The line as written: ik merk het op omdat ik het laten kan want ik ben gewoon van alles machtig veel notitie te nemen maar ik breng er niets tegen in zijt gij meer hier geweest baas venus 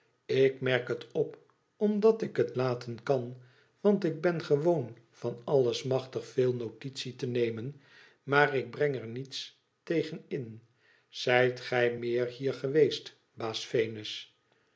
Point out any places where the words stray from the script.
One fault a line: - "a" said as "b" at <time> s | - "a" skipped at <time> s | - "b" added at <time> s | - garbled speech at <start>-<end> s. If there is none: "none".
none